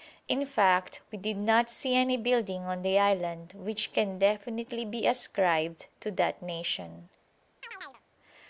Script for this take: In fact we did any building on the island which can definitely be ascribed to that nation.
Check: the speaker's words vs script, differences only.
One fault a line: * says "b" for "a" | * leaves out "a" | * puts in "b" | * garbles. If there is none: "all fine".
* puts in "not see"